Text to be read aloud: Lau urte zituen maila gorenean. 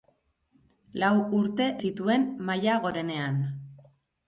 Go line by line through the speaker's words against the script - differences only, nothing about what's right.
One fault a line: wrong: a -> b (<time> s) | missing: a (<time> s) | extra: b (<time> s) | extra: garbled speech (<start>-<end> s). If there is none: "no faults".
no faults